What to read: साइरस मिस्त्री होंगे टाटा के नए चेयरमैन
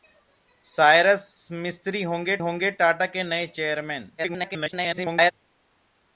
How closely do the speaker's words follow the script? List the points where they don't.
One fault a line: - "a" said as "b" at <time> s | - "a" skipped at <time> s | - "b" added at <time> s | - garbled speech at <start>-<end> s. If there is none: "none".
- "होंगे" added at 2.4 s
- garbled speech at 4.2-5.3 s